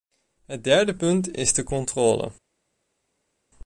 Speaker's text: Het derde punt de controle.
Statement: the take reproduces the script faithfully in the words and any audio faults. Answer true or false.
false